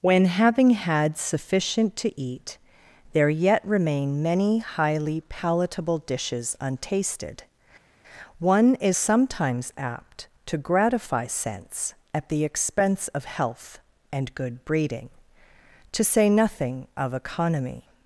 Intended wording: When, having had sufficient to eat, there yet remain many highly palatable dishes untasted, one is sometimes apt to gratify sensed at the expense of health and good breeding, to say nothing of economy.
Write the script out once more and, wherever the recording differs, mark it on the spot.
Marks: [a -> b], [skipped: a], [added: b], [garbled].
When, having had sufficient to eat, there yet remain many highly palatable dishes untasted, one is sometimes apt to gratify [sensed -> sense] at the expense of health and good breeding, to say nothing of economy.